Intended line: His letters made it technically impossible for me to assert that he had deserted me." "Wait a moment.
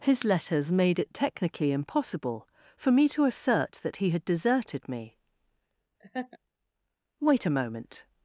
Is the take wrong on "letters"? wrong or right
right